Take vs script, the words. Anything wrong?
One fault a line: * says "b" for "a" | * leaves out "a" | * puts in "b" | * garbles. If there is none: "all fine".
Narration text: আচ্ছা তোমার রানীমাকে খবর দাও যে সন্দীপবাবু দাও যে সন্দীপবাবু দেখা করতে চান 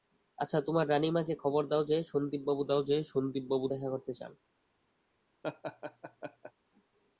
all fine